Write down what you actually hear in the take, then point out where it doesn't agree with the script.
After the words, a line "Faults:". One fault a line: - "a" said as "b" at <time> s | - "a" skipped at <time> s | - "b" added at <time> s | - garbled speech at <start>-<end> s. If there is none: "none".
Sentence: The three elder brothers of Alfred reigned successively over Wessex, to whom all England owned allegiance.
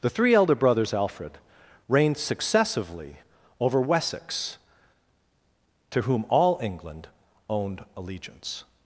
The three elder brothers Alfred reigned successively over Wessex, to whom all England owned allegiance.
Faults:
- "of" skipped at 0.9 s